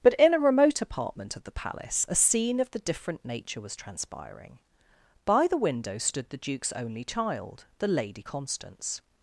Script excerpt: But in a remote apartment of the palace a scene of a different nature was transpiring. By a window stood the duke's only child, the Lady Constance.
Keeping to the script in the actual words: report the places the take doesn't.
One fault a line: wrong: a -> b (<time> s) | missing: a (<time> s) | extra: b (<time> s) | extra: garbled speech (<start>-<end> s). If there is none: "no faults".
wrong: a -> the (2.7 s)
wrong: a -> the (5.5 s)